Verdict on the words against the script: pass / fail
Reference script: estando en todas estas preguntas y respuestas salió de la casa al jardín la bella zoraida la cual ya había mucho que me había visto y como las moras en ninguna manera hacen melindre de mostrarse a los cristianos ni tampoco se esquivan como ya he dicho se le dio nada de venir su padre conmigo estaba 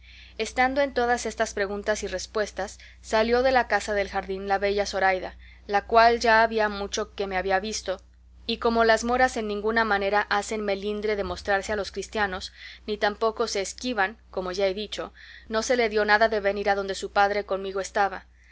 fail